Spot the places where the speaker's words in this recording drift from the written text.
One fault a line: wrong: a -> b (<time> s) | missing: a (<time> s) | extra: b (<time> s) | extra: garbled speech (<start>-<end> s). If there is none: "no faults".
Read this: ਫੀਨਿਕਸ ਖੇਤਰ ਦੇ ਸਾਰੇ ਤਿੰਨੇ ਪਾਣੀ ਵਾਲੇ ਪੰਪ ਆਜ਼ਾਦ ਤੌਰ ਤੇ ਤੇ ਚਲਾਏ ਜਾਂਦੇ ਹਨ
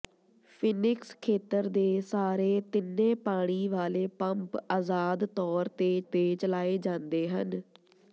no faults